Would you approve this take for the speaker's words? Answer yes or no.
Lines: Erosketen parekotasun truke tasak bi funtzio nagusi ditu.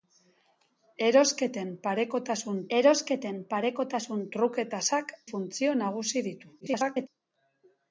no